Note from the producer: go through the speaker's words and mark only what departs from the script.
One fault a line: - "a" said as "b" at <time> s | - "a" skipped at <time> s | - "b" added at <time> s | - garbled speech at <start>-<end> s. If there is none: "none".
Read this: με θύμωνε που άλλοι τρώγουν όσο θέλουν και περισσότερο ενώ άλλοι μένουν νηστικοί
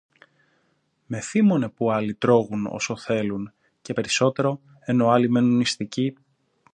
none